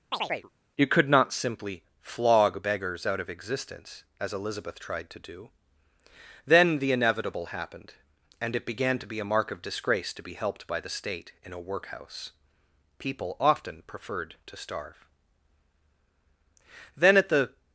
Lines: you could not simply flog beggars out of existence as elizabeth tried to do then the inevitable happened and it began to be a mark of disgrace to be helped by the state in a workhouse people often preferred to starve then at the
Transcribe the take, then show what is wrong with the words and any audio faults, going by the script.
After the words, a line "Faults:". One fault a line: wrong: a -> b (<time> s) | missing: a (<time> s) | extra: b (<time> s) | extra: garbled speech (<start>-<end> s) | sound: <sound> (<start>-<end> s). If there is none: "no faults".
you could not simply flog beggars out of existence as elizabeth tried to do then the inevitable happened and it began to be a mark of disgrace to be helped by the state in a workhouse people often preferred to starve then at the
Faults:
sound: chirp (0.1-0.5 s)